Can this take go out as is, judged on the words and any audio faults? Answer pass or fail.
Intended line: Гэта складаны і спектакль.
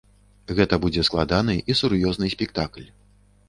fail